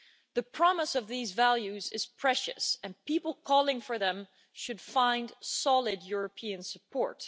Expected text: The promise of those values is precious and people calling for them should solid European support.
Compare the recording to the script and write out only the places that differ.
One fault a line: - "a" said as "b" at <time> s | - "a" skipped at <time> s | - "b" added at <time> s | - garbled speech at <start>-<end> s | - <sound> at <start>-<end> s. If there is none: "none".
- "those" said as "these" at 1.1 s
- "find" added at 4.8 s